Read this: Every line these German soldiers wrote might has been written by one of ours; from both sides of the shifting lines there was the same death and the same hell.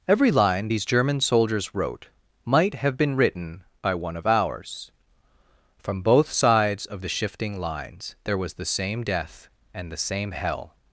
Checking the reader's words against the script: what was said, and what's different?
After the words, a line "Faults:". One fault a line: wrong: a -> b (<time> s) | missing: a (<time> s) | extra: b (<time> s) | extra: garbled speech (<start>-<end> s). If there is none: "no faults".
Every line these German soldiers wrote might have been written by one of ours; from both sides of the shifting lines there was the same death and the same hell.
Faults:
wrong: has -> have (2.7 s)